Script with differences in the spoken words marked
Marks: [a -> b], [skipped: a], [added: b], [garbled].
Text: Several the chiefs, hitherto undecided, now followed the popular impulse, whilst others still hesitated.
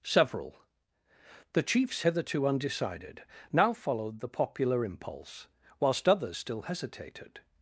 Several the chiefs, hitherto undecided, now followed the popular impulse, whilst others still hesitated.